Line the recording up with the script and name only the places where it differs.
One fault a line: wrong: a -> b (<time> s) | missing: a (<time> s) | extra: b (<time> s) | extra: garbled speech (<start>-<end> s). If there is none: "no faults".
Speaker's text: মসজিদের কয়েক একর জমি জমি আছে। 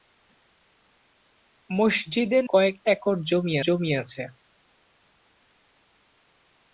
no faults